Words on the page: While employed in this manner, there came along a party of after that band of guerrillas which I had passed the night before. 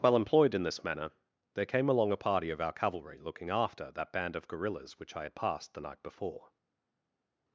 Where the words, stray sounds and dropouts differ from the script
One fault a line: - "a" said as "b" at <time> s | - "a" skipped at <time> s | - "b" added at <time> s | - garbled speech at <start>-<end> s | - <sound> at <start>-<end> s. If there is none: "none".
- "our cavalry looking" added at 2.6 s